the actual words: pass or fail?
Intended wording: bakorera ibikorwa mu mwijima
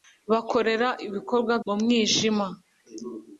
pass